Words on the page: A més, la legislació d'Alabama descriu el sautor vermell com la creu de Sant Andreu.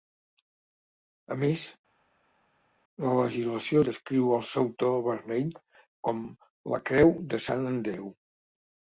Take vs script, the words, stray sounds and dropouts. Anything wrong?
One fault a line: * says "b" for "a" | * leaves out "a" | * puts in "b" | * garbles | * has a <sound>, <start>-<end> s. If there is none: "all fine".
* leaves out "d'Alabama"